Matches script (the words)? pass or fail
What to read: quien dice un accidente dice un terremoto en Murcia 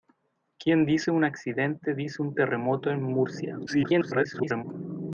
fail